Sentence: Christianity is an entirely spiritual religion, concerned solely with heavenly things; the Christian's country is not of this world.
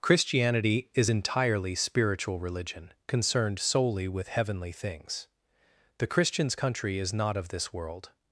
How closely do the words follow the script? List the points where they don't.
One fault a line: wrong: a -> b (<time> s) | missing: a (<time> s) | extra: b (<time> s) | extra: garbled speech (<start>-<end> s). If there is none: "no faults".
missing: an (1.1 s)